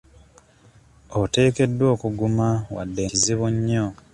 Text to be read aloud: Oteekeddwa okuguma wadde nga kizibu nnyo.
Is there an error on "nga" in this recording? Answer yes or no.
yes